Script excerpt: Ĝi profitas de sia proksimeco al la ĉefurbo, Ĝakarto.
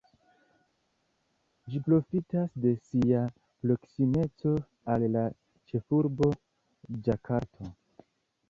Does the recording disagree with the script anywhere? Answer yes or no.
no